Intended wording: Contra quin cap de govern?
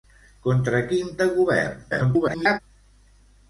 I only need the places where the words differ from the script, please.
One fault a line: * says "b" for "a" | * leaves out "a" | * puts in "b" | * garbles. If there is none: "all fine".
* leaves out "cap"
* garbles